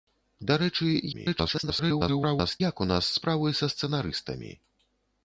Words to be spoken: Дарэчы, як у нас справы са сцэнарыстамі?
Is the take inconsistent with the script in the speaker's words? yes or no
yes